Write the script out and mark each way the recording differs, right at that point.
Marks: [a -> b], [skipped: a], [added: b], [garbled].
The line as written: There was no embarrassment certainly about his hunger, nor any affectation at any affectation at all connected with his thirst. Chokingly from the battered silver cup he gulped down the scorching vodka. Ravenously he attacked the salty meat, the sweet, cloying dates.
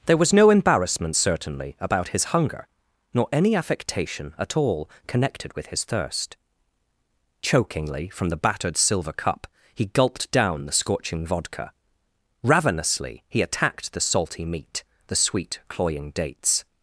There was no embarrassment certainly about his hunger, nor any affectation at [skipped: any affectation at] all connected with his thirst. Chokingly from the battered silver cup he gulped down the scorching vodka. Ravenously he attacked the salty meat, the sweet, cloying dates.